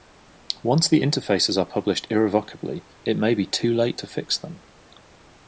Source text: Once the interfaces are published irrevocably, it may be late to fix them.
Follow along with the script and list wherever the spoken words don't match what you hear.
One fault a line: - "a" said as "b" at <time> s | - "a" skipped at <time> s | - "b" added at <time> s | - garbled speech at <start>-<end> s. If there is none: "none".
- "too" added at 3.5 s